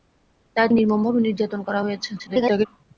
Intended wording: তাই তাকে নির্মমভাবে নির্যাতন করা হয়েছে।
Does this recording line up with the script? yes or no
no